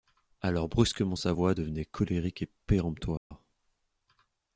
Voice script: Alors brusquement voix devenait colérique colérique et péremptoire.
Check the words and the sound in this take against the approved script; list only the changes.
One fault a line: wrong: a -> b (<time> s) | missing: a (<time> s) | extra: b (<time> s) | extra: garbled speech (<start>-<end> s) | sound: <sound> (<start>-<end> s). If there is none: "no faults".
extra: sa (1.1 s)
missing: colérique (2.4 s)
sound: dropout (3.2-3.3 s)